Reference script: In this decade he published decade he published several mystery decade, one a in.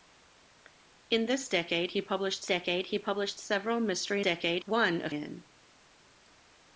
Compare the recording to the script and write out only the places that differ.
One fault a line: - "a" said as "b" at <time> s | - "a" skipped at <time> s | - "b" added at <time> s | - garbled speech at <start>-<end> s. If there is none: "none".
none